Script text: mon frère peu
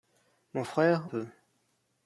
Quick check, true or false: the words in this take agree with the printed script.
true